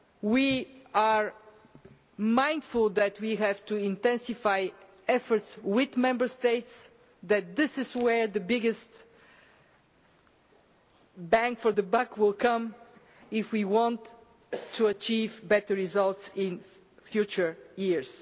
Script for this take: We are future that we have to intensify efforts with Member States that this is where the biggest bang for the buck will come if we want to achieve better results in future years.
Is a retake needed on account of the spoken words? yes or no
yes